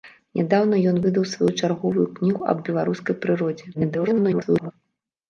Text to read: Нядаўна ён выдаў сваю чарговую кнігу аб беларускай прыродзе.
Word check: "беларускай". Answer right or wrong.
right